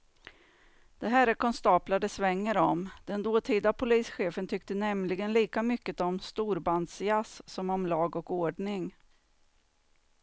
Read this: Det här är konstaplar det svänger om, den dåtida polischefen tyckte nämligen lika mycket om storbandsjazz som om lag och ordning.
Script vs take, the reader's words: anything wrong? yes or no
no